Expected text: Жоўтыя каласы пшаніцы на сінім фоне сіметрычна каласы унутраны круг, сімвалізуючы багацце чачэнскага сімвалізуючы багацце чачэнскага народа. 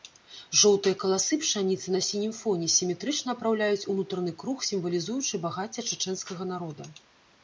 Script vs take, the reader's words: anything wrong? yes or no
yes